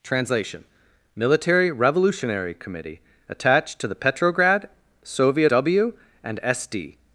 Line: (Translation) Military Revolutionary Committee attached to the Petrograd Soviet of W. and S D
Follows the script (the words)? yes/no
no